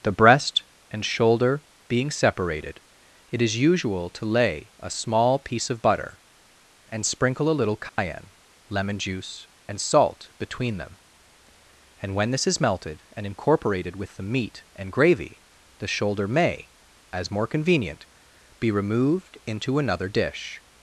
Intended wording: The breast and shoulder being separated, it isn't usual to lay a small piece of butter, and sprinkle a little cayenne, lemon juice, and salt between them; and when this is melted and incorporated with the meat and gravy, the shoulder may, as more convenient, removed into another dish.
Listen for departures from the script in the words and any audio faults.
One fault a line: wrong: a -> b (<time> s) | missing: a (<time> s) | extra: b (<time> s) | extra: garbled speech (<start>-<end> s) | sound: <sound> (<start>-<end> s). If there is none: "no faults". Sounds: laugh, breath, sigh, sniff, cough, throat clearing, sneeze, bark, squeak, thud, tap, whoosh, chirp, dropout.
wrong: isn't -> is (3.4 s)
sound: dropout (7.9-8.0 s)
extra: be (18.6 s)